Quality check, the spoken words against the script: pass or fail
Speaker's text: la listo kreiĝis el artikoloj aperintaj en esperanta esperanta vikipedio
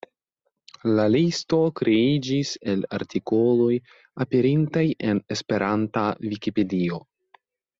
fail